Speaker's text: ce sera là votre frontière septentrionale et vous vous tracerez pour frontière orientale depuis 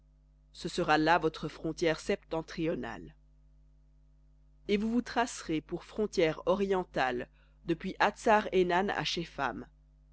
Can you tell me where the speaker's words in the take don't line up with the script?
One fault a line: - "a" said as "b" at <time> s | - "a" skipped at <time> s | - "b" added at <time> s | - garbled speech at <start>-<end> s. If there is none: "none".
none